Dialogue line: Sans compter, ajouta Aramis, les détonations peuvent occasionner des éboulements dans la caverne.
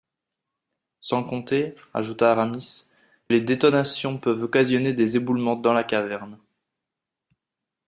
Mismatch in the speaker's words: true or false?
false